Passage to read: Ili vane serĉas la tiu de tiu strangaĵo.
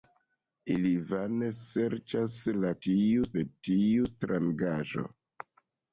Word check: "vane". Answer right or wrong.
right